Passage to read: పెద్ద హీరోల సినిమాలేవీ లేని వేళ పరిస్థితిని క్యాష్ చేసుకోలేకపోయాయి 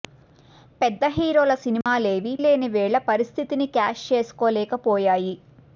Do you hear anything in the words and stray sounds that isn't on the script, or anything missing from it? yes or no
yes